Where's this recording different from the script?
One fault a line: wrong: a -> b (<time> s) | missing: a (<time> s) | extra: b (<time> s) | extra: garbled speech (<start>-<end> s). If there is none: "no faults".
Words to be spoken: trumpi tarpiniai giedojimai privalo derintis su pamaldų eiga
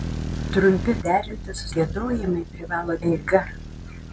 wrong: tarpiniai -> derintis (1.1 s)
missing: derintis su pamaldų (3.0 s)